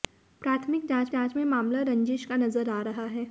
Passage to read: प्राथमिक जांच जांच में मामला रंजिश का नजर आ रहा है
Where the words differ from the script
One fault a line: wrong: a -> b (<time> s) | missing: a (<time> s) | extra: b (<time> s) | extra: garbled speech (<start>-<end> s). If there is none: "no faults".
no faults